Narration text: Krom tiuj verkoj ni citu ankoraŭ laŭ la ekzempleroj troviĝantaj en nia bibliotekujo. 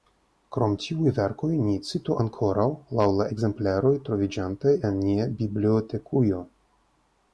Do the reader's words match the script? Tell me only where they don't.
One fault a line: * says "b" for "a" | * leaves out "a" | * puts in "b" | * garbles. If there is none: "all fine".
all fine